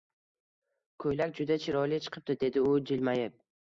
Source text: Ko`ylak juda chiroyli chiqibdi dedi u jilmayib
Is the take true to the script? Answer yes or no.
yes